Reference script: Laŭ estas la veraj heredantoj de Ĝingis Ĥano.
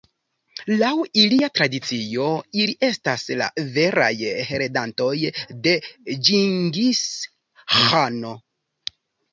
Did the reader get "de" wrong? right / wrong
right